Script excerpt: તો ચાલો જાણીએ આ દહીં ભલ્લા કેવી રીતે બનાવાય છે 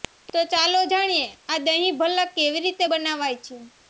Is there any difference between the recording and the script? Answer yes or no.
no